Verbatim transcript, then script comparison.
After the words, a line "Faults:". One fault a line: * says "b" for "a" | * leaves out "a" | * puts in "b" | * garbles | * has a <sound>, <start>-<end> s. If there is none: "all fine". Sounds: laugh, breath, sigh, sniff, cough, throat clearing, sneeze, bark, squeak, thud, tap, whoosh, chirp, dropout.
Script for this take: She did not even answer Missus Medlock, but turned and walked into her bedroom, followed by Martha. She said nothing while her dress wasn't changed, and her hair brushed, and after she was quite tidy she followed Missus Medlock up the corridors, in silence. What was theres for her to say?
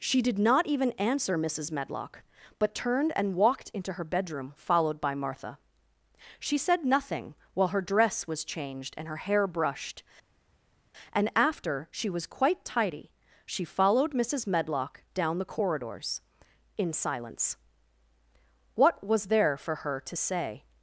She did not even answer Missus Medlock, but turned and walked into her bedroom, followed by Martha. She said nothing while her dress was changed, and her hair brushed, and after she was quite tidy she followed Missus Medlock down the corridors, in silence. What was there for her to say?
Faults:
* says "was" for "wasn't"
* says "down" for "up"
* says "there" for "theres"